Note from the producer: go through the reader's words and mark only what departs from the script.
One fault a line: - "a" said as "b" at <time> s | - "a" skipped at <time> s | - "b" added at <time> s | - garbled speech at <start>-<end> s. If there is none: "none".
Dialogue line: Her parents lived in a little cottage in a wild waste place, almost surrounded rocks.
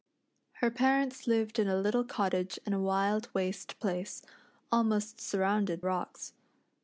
none